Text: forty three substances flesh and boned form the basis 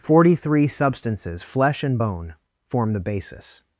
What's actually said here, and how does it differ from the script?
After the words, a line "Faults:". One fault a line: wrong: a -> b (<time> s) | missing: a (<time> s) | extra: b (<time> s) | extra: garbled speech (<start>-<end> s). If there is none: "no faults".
forty three substances flesh and bone form the basis
Faults:
wrong: boned -> bone (2.0 s)